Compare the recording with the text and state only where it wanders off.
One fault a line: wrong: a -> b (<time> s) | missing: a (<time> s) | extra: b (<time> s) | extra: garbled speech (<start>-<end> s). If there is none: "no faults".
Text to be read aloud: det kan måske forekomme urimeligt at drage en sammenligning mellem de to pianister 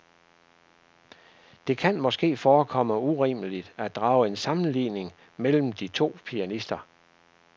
no faults